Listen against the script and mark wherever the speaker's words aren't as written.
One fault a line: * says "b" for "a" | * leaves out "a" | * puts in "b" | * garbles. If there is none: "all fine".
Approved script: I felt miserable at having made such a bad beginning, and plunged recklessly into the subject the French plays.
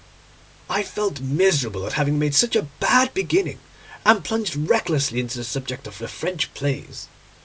* puts in "of"